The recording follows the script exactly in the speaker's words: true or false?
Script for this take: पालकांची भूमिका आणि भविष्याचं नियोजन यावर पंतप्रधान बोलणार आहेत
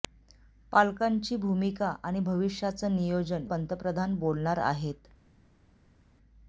false